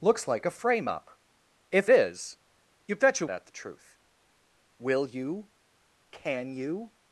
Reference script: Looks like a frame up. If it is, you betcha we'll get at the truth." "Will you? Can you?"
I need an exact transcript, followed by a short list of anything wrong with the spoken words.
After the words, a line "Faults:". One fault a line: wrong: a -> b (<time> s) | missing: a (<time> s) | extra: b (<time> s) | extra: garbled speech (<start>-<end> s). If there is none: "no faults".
Looks like a frame up. If is, you betcha at the truth." "Will you? Can you?"
Faults:
missing: it (1.9 s)
missing: we'll get (3.3 s)